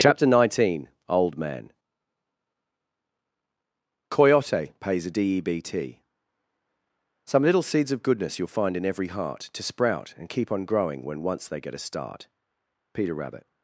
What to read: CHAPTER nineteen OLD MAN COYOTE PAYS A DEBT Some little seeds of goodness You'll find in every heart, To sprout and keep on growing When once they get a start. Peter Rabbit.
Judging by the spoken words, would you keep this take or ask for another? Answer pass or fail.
pass